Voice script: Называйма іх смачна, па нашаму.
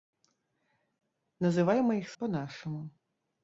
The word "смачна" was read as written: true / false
false